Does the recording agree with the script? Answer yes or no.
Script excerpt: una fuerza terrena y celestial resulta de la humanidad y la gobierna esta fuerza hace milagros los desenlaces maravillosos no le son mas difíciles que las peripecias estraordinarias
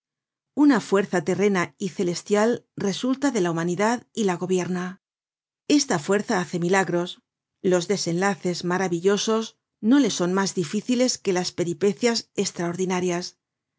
yes